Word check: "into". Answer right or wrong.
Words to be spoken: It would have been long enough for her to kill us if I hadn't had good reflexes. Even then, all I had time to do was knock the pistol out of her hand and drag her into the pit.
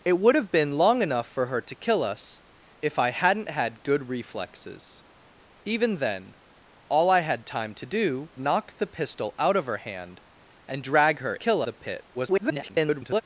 wrong